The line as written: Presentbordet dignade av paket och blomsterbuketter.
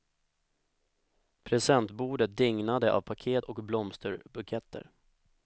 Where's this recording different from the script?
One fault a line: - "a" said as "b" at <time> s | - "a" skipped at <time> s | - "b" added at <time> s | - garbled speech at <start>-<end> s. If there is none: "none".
none